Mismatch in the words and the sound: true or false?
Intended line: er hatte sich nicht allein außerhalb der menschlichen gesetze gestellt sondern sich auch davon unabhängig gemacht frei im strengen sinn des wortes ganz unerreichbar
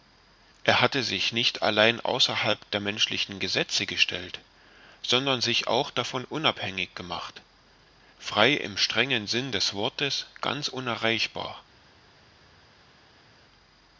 false